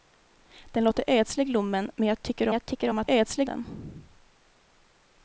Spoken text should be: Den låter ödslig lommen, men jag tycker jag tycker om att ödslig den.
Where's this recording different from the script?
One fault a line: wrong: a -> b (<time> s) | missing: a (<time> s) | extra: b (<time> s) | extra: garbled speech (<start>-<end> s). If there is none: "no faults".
no faults